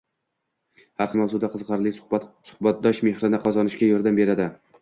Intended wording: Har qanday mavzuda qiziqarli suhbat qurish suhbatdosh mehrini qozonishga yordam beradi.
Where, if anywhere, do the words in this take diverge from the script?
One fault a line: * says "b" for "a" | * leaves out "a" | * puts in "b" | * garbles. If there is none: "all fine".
* leaves out "qanday"
* leaves out "qurish"